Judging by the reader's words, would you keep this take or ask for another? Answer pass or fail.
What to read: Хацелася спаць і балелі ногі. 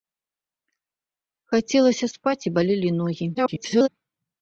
fail